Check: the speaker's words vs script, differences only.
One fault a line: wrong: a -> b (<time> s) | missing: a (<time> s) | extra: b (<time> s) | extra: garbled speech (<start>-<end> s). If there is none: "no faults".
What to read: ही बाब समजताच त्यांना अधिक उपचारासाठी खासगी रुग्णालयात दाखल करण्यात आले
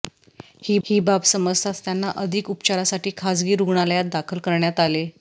extra: ही (0.8 s)